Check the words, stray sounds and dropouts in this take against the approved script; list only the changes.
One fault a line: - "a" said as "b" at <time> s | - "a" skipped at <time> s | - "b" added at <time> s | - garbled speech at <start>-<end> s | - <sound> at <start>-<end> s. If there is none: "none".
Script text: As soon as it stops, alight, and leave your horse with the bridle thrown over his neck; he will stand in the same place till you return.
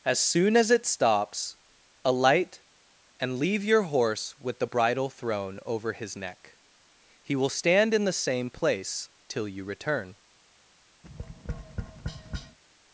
- tap at 11.0-12.6 s